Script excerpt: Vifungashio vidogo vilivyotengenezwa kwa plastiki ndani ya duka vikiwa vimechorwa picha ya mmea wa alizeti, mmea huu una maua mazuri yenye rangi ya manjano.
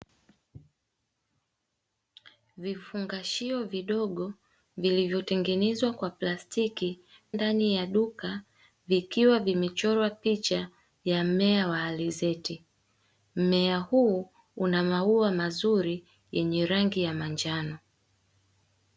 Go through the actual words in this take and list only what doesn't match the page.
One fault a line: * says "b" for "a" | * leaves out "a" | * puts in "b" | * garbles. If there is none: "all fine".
all fine